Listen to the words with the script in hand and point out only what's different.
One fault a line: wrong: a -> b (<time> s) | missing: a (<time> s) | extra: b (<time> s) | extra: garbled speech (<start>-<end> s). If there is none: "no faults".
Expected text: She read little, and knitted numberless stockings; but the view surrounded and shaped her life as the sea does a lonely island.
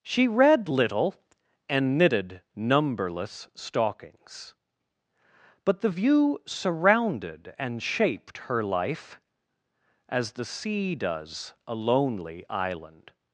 no faults